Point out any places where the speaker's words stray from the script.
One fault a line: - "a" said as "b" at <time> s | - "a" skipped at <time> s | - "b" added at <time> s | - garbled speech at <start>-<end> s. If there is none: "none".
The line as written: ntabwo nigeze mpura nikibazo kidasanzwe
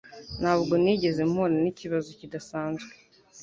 none